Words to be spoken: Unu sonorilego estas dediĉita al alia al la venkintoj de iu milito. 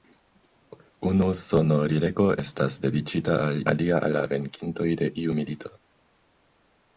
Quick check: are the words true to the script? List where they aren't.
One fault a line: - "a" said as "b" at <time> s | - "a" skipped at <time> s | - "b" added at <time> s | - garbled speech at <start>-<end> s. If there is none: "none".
none